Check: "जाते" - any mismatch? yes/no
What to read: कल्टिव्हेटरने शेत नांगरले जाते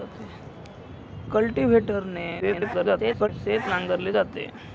no